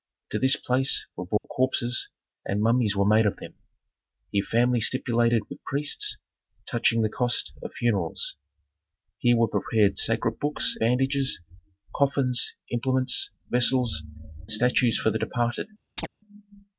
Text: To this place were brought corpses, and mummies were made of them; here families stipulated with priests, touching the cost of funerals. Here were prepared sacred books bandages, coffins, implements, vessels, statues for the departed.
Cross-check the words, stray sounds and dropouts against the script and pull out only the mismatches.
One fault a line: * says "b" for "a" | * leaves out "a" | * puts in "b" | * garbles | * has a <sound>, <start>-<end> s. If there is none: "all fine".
* has a dropout, 1.4-1.4 s
* has a chirp, 16.0-16.1 s